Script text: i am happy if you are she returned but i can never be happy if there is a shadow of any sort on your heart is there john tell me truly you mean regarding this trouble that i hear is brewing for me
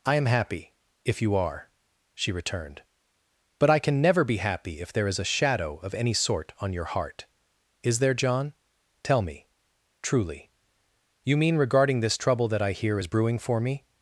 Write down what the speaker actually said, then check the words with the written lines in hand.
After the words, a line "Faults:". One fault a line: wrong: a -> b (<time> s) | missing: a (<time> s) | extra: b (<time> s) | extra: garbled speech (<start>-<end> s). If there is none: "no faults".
i am happy if you are she returned but i can never be happy if there is a shadow of any sort on your heart is there john tell me truly you mean regarding this trouble that i hear is brewing for me
Faults:
no faults